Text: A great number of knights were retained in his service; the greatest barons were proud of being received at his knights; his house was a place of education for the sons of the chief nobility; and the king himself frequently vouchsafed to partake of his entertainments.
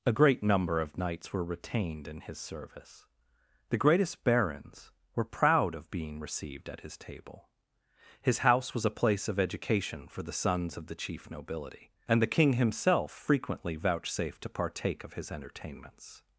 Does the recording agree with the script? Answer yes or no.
no